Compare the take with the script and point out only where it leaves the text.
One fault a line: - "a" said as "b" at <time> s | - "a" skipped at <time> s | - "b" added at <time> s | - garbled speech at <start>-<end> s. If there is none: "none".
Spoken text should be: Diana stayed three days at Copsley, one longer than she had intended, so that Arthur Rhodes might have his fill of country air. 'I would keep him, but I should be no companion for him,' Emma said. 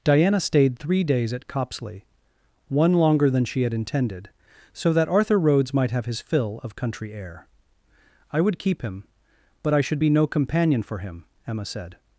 none